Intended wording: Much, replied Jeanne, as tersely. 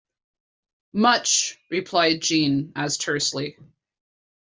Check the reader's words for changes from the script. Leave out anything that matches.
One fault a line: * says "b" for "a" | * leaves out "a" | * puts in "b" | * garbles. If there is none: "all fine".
all fine